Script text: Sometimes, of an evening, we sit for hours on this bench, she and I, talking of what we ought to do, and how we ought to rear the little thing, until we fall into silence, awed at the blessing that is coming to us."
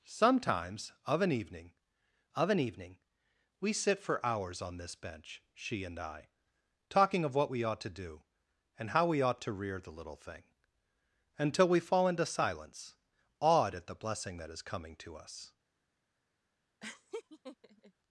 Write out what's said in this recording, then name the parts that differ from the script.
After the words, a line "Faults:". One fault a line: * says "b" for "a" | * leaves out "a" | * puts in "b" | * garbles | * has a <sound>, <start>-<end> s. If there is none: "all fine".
Sometimes, of an evening of an evening, we sit for hours on this bench, she and I, talking of what we ought to do, and how we ought to rear the little thing, until we fall into silence, awed at the blessing that is coming to us."
Faults:
* puts in "of an evening"
* has a laugh, 16.8-17.9 s